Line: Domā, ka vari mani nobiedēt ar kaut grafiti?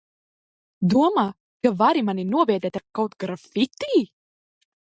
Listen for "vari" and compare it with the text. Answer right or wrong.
right